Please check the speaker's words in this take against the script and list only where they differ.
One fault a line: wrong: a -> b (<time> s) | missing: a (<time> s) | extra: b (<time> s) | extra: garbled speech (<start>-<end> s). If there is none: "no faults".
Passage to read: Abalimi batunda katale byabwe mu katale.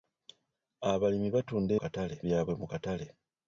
no faults